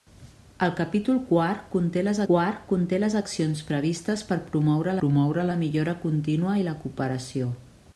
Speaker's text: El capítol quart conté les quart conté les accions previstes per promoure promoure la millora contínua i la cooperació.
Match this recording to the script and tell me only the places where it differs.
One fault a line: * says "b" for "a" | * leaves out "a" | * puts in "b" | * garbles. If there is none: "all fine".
all fine